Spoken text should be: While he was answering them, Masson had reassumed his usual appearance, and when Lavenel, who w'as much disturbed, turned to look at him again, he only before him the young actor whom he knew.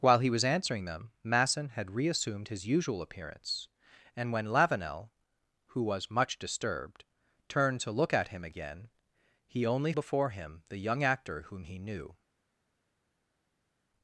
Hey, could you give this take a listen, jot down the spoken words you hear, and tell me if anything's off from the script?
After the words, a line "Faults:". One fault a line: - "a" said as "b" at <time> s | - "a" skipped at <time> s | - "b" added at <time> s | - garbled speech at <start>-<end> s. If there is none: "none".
While he was answering them, Masson had reassumed his usual appearance, and when Lavenel, who w'as much disturbed, turned to look at him again, he only before him the young actor whom he knew.
Faults:
none